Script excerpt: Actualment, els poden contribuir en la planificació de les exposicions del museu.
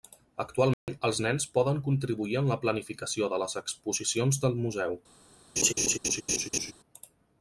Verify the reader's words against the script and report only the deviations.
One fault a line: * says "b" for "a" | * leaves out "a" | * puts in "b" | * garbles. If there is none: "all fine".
* puts in "nens"